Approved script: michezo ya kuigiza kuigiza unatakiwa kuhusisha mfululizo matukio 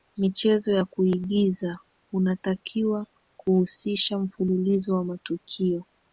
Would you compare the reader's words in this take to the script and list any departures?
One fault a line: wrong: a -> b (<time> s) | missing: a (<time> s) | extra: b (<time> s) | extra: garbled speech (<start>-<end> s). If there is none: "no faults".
missing: kuigiza (1.8 s)
extra: wa (4.9 s)